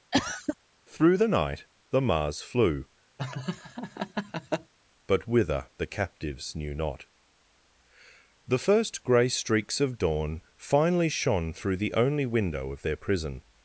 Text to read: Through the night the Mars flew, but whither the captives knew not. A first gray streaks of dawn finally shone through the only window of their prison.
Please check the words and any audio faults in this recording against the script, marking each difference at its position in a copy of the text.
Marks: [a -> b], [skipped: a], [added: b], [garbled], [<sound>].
[cough] Through the night the Mars flew, [laugh] but whither the captives knew not. [A -> The] first gray streaks of dawn finally shone through the only window of their prison.